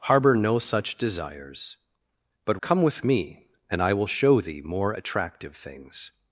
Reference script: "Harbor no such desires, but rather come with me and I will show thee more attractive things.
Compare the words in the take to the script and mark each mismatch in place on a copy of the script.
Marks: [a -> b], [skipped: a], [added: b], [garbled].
"Harbor no such desires, but [skipped: rather] come with me and I will show thee more attractive things.